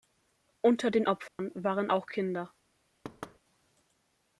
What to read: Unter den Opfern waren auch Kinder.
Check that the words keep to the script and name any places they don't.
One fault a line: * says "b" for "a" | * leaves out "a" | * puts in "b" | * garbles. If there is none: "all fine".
all fine